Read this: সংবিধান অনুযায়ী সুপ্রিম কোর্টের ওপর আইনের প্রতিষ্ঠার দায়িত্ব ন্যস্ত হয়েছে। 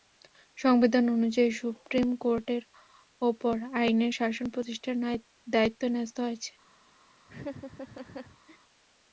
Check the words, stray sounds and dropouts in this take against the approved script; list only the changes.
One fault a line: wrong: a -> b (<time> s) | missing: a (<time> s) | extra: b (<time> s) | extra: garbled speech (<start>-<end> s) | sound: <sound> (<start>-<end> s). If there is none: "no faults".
extra: শাসন (4.1 s)
sound: laugh (7.3-8.6 s)